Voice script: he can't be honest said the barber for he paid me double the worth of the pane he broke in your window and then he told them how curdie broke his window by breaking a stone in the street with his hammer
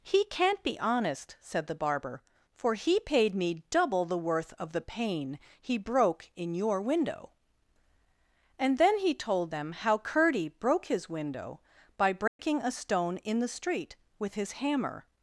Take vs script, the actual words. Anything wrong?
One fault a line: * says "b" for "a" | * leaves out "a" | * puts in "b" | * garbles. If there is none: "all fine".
all fine